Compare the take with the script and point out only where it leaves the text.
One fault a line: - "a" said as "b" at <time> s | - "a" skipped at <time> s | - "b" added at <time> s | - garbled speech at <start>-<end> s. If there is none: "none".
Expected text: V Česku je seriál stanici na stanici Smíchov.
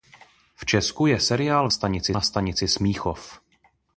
none